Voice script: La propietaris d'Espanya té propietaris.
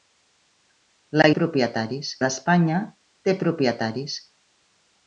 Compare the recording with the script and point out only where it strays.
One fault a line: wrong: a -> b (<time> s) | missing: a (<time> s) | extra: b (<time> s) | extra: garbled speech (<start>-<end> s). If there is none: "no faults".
no faults